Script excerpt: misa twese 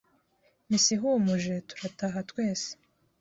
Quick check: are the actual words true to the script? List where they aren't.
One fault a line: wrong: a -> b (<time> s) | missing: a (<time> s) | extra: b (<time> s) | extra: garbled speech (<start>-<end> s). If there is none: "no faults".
extra: ihumuje turataha (0.9 s)